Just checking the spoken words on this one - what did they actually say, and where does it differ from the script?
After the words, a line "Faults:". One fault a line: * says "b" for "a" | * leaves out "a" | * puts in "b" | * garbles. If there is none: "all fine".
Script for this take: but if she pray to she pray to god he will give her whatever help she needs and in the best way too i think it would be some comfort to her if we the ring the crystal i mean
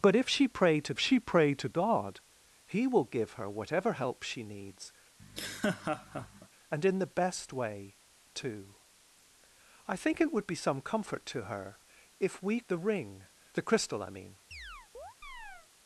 but if she pray to she pray to god he will give her whatever help she needs and in the best way too i think it would be some comfort to her if we the ring the crystal i mean
Faults:
all fine